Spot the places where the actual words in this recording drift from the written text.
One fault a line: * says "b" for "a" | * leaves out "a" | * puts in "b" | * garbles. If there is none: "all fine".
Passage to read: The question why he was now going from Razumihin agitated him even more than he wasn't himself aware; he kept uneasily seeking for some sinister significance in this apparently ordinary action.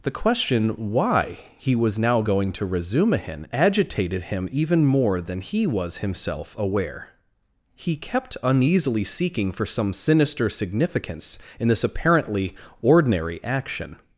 * says "to" for "from"
* says "was" for "wasn't"